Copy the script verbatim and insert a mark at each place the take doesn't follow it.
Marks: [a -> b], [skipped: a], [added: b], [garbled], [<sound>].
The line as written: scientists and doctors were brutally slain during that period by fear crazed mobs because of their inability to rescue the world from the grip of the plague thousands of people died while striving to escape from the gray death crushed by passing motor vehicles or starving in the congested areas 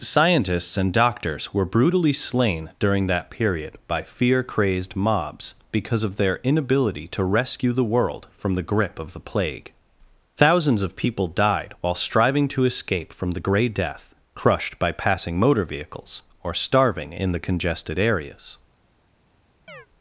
scientists and doctors were brutally slain during that period by fear crazed mobs because of their inability to rescue the world from the grip of the plague thousands of people died while striving to escape from the gray death crushed by passing motor vehicles or starving in the congested areas [chirp]